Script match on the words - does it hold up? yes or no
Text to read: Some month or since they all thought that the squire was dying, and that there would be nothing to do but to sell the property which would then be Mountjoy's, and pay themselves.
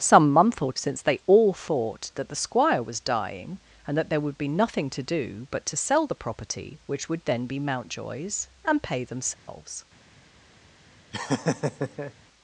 yes